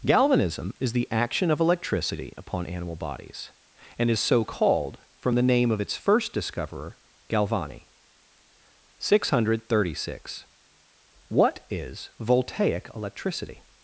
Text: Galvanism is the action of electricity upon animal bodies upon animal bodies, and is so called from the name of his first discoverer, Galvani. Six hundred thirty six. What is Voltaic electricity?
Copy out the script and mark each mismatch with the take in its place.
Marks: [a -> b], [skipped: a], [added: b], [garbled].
Galvanism is the action of electricity upon animal bodies [skipped: upon animal bodies,] and is so called from the name of [his -> its] first discoverer, Galvani. Six hundred thirty six. What is Voltaic electricity?